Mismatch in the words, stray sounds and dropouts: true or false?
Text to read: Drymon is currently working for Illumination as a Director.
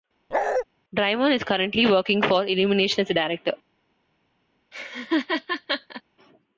true